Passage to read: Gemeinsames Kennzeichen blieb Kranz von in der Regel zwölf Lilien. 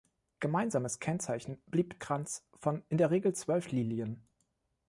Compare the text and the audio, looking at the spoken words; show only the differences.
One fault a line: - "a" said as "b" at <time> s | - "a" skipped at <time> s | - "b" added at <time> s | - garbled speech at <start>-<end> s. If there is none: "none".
none